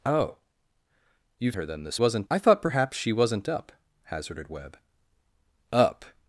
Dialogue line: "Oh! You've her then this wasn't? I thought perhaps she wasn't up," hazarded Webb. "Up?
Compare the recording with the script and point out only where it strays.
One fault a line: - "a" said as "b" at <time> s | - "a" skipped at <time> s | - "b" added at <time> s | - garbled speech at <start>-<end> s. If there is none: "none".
none